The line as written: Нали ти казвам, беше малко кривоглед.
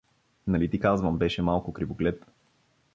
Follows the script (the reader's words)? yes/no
yes